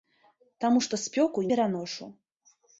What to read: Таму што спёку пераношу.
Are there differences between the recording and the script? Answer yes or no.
no